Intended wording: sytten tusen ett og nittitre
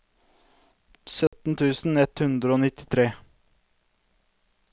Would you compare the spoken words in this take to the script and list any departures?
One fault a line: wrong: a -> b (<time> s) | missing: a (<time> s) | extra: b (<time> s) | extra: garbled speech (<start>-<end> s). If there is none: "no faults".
extra: hundre (2.2 s)